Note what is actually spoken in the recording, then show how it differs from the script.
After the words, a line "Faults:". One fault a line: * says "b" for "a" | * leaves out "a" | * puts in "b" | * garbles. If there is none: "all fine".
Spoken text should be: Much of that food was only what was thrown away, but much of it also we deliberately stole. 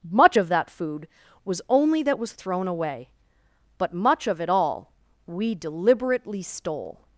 Much of that food was only that was thrown away, but much of it all we deliberately stole.
Faults:
* says "that" for "what"
* says "all" for "also"